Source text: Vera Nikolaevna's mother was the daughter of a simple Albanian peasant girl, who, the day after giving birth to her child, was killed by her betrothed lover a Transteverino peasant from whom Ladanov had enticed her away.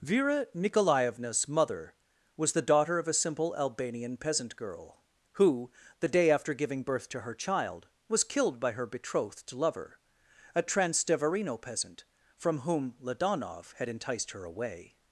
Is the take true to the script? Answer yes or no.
yes